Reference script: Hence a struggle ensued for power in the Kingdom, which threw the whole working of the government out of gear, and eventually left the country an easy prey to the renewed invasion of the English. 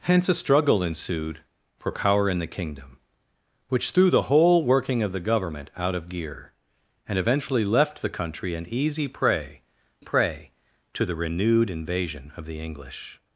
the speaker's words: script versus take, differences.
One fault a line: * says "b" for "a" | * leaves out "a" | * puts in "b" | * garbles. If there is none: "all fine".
* puts in "prey"